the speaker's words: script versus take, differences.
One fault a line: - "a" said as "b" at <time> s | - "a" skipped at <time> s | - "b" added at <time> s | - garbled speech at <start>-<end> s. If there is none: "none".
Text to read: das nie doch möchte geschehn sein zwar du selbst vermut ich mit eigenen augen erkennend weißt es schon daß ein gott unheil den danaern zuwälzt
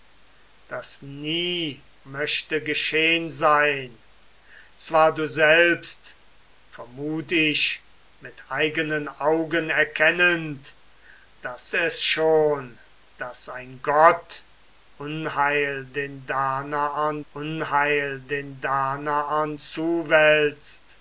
- "doch" skipped at 1.9 s
- "weißt" said as "daß" at 11.4 s
- "unheil den danaern" added at 17.3 s